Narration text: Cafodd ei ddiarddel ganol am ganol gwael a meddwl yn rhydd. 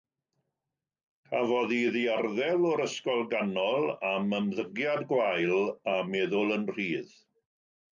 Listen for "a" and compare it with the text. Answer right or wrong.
right